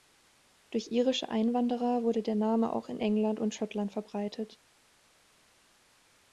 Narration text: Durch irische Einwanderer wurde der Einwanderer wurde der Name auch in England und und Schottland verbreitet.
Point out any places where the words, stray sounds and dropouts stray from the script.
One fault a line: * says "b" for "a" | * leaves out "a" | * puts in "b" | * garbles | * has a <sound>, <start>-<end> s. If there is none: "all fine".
* leaves out "Einwanderer wurde der"
* leaves out "und"